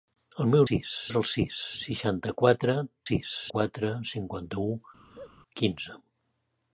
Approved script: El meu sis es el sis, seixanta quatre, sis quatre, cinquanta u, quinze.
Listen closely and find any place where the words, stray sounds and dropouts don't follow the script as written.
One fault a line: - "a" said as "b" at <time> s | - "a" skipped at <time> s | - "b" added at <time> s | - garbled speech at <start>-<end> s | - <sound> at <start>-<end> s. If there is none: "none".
- laugh at 5.0-5.3 s